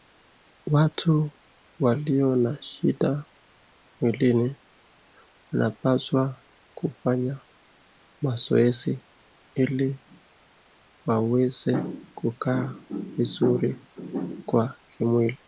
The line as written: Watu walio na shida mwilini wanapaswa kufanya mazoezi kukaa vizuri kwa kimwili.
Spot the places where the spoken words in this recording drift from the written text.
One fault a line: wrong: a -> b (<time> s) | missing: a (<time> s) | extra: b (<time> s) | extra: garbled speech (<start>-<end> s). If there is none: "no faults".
extra: ili waweze (9.5 s)